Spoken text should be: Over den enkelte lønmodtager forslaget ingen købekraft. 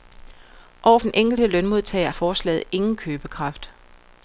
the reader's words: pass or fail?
pass